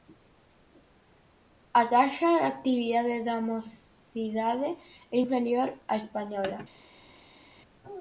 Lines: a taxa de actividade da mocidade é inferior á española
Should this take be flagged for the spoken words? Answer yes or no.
no